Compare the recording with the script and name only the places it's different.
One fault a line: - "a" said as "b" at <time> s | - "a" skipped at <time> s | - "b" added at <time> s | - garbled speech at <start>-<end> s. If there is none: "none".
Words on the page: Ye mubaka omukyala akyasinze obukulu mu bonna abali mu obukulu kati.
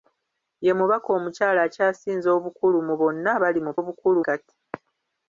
none